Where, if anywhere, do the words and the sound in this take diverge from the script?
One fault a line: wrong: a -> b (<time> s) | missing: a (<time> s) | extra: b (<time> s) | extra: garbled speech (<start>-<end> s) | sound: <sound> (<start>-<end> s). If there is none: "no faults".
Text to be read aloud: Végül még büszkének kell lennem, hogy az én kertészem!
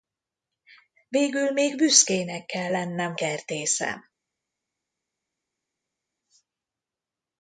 missing: hogy az én (3.1 s)